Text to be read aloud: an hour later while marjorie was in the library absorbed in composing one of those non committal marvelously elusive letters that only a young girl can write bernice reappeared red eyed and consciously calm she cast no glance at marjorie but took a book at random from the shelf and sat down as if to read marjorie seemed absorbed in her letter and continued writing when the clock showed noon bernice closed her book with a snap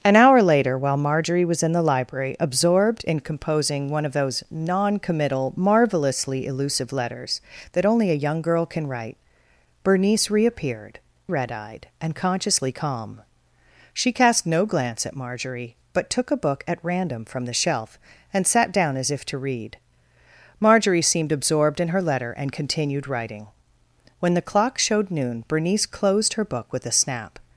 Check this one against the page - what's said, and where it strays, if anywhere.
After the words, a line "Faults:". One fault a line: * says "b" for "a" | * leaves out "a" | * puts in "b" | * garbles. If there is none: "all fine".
an hour later while marjorie was in the library absorbed in composing one of those non committal marvelously elusive letters that only a young girl can write bernice reappeared red eyed and consciously calm she cast no glance at marjorie but took a book at random from the shelf and sat down as if to read marjorie seemed absorbed in her letter and continued writing when the clock showed noon bernice closed her book with a snap
Faults:
all fine